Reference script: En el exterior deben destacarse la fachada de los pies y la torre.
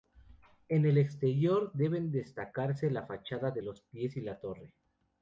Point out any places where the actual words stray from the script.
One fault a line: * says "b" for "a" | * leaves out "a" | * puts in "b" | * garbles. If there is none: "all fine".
all fine